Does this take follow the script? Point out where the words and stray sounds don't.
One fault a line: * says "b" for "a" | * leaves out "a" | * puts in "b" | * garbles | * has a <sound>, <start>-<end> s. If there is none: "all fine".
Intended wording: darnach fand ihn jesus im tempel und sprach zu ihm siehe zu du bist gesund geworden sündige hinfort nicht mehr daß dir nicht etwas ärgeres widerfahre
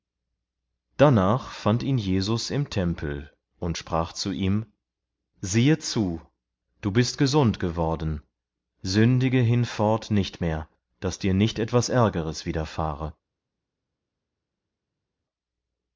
all fine